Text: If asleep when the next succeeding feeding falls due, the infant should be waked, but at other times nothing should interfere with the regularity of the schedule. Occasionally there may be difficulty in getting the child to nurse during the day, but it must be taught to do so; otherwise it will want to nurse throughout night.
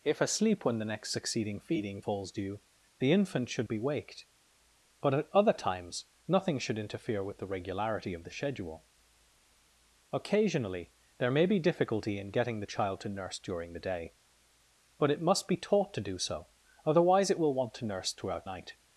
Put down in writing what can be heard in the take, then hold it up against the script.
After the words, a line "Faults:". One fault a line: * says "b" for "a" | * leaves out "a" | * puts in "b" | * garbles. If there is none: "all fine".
If asleep when the next succeeding feeding falls due, the infant should be waked, but at other times nothing should interfere with the regularity of the schedule. Occasionally there may be difficulty in getting the child to nurse during the day, but it must be taught to do so; otherwise it will want to nurse throughout night.
Faults:
all fine